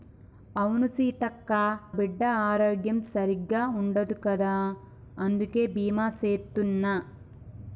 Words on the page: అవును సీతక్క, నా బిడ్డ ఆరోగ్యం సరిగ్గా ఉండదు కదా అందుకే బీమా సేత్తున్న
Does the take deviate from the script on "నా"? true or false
true